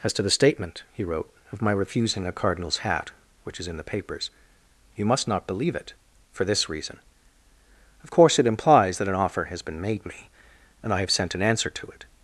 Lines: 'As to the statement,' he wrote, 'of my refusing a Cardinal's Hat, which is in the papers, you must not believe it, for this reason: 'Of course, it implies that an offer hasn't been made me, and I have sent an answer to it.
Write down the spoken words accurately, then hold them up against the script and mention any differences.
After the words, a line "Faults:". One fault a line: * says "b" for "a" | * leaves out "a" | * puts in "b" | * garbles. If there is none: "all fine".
'As to the statement,' he wrote, 'of my refusing a Cardinal's Hat, which is in the papers, you must not believe it, for this reason: 'Of course, it implies that an offer has been made me, and I have sent an answer to it.
Faults:
* says "has" for "hasn't"